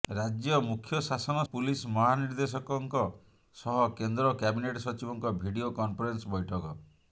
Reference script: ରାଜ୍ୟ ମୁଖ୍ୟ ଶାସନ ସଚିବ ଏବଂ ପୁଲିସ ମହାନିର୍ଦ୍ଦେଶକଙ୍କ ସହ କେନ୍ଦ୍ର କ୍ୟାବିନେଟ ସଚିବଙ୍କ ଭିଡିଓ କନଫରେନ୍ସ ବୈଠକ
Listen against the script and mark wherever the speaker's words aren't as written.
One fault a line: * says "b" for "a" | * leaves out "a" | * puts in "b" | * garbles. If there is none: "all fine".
* leaves out "ସଚିବ ଏବଂ"